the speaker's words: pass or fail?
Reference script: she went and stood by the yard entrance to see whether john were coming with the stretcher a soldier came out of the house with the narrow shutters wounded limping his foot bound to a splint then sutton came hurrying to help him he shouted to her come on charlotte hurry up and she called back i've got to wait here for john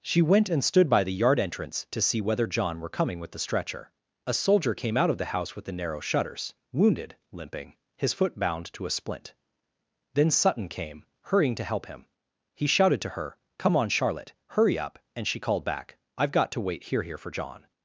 fail